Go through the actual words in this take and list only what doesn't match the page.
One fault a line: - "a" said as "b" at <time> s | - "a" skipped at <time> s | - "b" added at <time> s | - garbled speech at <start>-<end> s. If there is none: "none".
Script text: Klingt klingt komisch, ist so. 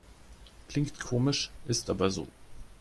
- "klingt" skipped at 1.0 s
- "aber" added at 1.9 s